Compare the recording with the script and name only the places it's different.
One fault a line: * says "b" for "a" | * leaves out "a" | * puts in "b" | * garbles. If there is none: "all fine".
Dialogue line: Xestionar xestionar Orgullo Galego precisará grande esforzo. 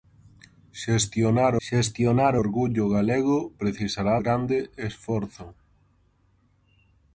all fine